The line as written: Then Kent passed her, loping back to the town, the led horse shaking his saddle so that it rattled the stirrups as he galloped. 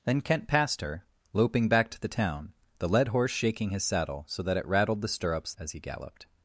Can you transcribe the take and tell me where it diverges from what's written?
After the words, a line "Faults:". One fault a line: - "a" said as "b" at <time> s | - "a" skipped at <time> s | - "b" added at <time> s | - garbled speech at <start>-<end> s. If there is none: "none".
Then Kent passed her, loping back to the town, the led horse shaking his saddle so that it rattled the stirrups as he galloped.
Faults:
none